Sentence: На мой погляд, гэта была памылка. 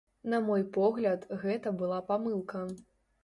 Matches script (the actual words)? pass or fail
pass